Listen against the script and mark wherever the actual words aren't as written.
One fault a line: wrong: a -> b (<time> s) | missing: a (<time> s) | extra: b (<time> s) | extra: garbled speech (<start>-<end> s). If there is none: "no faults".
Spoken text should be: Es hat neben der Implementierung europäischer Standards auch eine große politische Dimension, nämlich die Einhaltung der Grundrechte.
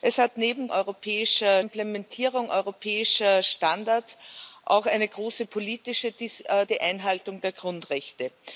wrong: der -> europäischer (0.7 s)
missing: Dimension nämlich (6.1 s)